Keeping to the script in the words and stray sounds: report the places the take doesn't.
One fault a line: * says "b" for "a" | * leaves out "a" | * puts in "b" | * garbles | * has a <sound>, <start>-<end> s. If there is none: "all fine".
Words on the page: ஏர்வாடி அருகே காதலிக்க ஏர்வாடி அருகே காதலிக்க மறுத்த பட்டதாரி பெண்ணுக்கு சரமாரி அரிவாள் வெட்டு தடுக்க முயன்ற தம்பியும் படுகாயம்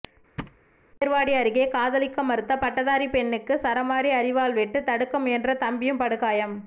* has a thud, 0.4-0.6 s
* leaves out "ஏர்வாடி அருகே காதலிக்க"